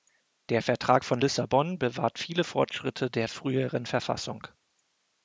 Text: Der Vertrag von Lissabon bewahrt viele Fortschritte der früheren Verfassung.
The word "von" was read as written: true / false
true